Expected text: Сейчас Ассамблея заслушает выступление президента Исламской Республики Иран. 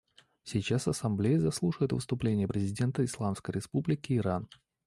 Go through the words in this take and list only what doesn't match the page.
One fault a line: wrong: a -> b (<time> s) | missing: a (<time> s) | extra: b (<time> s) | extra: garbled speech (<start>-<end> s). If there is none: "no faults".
no faults